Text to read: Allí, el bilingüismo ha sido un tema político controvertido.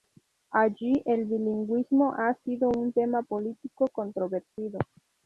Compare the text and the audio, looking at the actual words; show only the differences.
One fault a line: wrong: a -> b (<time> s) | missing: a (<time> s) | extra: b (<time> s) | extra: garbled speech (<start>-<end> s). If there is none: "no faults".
no faults